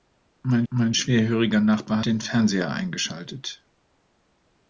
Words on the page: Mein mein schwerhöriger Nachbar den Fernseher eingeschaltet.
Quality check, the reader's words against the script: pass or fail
pass